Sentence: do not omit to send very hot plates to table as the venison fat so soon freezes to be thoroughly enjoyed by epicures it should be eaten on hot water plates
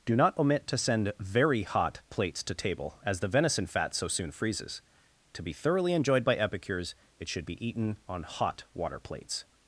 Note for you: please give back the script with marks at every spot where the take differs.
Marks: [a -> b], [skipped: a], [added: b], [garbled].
do not omit to send very hot plates to table as the venison fat so soon freezes to be thoroughly enjoyed by epicures it should be eaten on hot water plates